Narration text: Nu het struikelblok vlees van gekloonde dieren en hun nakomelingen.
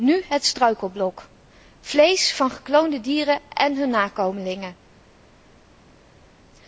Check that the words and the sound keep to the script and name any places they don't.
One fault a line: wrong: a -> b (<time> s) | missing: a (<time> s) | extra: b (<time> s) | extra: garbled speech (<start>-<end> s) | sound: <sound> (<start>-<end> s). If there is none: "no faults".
no faults